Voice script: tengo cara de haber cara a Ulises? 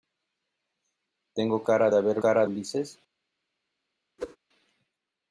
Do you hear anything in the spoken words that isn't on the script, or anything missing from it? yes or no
no